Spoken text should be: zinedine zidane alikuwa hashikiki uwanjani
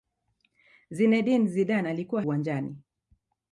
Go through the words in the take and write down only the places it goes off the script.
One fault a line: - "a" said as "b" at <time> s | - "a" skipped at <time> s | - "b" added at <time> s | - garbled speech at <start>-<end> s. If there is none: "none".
- "hashikiki" skipped at 2.2 s